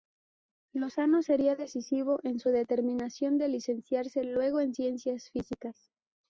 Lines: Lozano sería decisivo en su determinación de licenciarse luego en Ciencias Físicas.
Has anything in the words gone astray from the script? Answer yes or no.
no